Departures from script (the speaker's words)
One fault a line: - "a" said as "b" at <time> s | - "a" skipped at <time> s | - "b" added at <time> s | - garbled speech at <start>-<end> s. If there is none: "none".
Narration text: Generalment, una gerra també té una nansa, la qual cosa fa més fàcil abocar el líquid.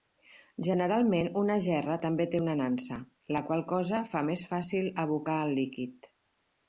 none